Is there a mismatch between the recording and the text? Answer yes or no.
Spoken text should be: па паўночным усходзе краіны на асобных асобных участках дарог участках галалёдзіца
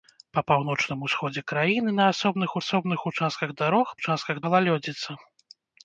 no